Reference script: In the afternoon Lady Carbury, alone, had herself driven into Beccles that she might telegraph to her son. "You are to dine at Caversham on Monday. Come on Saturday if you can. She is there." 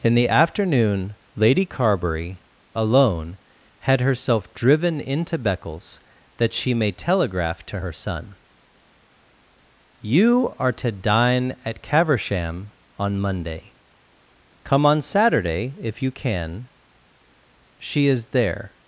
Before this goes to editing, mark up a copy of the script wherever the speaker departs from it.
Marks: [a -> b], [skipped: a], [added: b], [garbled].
In the afternoon Lady Carbury, alone, had herself driven into Beccles that she [might -> may] telegraph to her son. "You are to dine at Caversham on Monday. Come on Saturday if you can. She is there."